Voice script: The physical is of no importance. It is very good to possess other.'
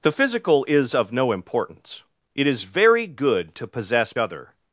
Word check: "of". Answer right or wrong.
right